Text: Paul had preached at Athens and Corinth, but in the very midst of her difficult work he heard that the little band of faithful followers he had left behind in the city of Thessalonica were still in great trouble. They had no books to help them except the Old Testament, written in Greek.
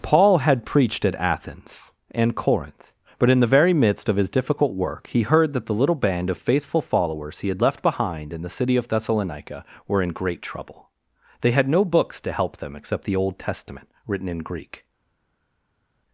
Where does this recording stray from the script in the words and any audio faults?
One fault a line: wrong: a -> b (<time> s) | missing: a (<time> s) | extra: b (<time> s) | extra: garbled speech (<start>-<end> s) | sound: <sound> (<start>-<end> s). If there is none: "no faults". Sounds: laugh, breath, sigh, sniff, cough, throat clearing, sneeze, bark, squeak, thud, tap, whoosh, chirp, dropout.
wrong: her -> his (4.2 s)
missing: still (10.0 s)